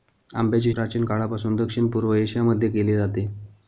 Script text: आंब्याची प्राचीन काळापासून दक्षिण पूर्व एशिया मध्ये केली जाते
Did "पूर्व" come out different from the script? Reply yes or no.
no